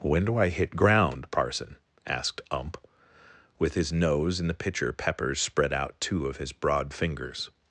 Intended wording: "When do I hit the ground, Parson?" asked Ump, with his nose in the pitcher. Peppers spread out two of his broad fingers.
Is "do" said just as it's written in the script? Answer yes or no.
yes